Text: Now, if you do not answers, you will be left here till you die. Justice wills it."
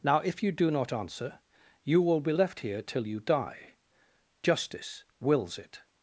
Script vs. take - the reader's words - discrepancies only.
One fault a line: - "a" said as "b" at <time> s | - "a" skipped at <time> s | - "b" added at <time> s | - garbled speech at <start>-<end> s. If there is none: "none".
- "answers" said as "answer" at 0.9 s